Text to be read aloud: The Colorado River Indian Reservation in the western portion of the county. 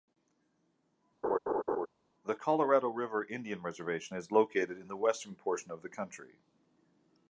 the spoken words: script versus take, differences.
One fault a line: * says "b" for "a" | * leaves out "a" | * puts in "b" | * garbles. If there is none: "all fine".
* puts in "is located"